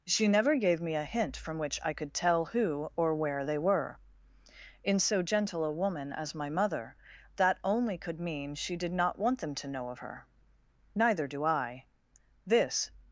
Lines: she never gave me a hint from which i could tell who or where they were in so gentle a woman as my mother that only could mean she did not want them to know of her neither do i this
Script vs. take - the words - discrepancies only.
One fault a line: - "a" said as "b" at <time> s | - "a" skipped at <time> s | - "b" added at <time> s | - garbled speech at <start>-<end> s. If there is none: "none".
none